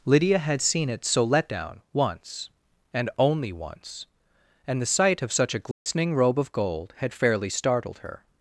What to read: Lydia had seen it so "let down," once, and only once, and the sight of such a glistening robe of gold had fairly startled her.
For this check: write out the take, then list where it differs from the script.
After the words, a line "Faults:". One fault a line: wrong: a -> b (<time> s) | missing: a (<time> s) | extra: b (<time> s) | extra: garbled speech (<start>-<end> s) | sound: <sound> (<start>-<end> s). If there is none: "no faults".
Lydia had seen it so "let down," once, and only once, and the sight of such a glistening robe of gold had fairly startled her.
Faults:
sound: dropout (5.7-5.9 s)